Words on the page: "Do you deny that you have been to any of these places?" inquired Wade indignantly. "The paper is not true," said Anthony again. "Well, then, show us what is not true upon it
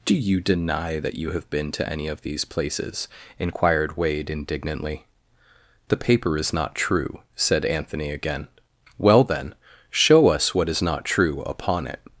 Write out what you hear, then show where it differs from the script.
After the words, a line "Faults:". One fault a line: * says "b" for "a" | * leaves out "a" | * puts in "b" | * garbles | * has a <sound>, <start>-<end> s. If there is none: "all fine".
"Do you deny that you have been to any of these places?" inquired Wade indignantly. "The paper is not true," said Anthony again. "Well, then, show us what is not true upon it
Faults:
all fine